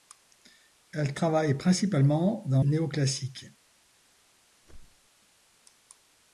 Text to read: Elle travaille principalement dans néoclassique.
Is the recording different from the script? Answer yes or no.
no